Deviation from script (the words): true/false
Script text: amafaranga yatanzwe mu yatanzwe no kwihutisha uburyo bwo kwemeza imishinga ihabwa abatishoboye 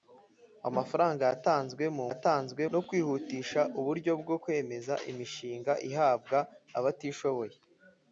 false